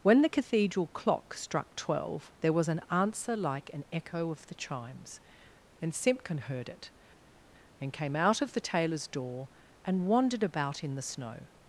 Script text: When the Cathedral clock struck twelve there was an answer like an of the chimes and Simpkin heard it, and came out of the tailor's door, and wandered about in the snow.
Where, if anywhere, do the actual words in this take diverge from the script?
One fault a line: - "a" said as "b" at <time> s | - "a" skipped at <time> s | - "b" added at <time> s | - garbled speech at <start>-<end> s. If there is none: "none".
- "echo" added at 3.9 s